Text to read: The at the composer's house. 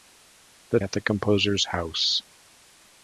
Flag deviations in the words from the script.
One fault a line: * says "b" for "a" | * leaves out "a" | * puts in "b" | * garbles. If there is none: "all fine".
all fine